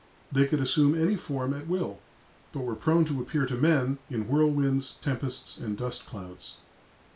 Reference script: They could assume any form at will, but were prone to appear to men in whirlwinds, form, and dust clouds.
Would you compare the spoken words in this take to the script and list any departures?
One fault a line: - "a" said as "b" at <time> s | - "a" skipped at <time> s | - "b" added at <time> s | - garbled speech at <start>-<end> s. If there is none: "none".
- "form" said as "tempests" at 5.0 s